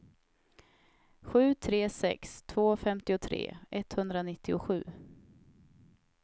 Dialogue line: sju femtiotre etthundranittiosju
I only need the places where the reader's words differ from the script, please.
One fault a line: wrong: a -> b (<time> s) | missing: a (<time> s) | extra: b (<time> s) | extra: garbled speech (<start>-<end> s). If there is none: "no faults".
extra: tre sex två (1.6 s)